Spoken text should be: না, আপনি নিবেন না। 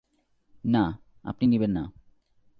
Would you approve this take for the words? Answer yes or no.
yes